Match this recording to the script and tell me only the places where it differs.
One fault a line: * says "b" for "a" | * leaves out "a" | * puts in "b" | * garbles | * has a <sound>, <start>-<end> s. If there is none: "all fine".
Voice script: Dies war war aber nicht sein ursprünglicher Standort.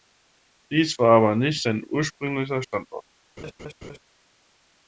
* leaves out "war"
* has a laugh, 3.4-4.0 s